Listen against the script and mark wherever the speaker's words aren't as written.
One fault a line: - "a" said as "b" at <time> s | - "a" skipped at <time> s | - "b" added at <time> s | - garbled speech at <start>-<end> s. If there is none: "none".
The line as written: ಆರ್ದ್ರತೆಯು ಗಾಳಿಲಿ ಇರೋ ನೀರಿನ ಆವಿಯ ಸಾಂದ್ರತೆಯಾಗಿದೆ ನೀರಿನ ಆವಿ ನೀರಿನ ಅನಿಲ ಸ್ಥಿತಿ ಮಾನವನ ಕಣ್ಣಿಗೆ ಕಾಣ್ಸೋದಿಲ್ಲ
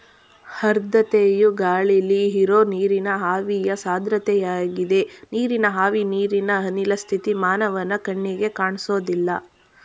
none